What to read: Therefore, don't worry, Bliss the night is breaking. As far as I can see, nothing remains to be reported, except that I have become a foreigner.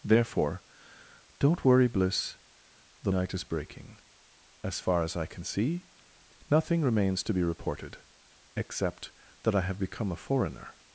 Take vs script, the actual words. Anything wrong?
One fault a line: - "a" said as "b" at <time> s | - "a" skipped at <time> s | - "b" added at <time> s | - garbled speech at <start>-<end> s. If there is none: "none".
none